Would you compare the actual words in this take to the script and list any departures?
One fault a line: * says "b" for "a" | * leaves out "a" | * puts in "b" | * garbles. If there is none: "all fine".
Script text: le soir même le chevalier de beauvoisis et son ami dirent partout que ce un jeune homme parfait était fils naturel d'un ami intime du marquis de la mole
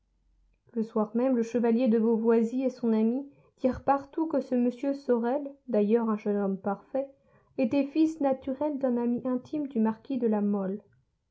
* puts in "m sorel d'ailleurs"